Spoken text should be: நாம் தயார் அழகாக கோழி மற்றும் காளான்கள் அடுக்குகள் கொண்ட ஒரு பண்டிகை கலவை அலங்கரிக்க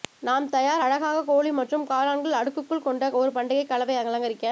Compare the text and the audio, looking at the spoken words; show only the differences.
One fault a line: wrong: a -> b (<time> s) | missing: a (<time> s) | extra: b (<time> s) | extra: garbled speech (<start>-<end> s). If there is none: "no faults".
no faults